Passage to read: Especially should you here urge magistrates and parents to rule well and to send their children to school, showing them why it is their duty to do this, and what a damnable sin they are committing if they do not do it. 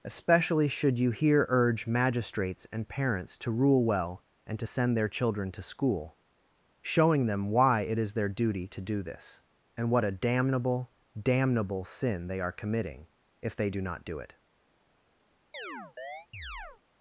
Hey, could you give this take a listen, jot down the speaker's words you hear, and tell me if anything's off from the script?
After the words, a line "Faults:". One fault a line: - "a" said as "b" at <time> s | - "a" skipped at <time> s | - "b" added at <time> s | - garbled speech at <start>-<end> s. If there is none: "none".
Especially should you here urge magistrates and parents to rule well and to send their children to school, showing them why it is their duty to do this, and what a damnable damnable sin they are committing if they do not do it.
Faults:
- "damnable" added at 11.2 s